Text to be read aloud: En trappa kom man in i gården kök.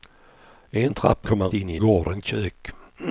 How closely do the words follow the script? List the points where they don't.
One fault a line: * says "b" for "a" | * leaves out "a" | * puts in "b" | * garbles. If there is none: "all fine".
all fine